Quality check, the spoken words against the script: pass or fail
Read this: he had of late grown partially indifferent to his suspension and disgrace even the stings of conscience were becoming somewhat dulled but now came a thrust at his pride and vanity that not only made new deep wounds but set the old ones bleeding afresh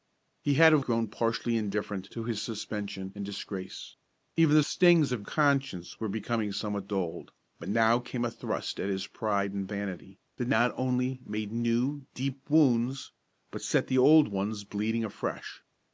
fail